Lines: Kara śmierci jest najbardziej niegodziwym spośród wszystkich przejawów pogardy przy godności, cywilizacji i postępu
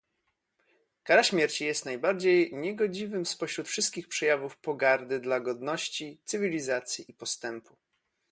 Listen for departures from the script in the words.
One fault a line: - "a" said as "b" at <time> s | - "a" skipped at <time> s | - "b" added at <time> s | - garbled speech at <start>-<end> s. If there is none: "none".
- "przy" said as "dla" at 5.2 s